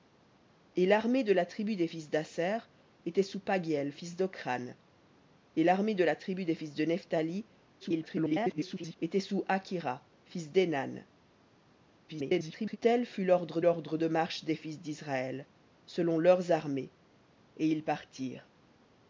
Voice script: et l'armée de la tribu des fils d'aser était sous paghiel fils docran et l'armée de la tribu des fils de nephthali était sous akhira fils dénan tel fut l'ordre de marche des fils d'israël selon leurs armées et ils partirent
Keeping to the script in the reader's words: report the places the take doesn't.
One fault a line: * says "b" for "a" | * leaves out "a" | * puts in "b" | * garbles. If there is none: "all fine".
* garbles
* garbles
* puts in "l'ordre"